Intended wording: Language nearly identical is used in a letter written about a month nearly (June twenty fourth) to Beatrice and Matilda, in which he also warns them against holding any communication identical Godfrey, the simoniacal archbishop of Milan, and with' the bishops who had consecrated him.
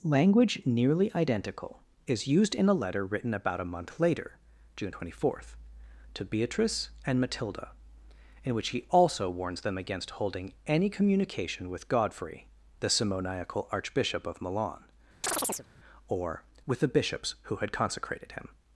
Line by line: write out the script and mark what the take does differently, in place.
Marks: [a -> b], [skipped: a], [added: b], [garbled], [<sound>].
Language nearly identical is used in a letter written about a month [nearly -> later] (June twenty fourth) to Beatrice and Matilda, in which he also warns them against holding any communication [identical -> with] Godfrey, the simoniacal archbishop of Milan, [chirp] [and -> or] with' the bishops who had consecrated him.